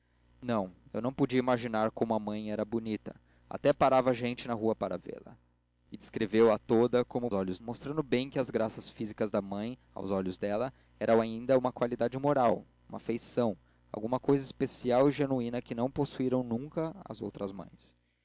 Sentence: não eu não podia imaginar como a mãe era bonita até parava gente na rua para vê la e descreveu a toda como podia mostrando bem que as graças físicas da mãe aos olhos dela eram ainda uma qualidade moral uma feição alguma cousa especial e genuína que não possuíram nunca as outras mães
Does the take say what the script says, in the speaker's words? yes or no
no